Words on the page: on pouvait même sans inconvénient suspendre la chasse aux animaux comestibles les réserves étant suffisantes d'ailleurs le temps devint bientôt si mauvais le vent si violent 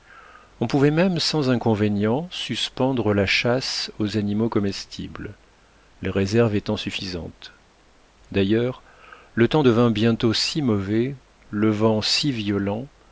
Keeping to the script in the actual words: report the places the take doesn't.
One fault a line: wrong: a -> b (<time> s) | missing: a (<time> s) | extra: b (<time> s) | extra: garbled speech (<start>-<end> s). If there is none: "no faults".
no faults